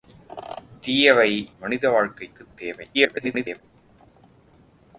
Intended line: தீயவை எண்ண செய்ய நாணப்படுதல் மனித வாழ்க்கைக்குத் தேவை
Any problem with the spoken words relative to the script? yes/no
yes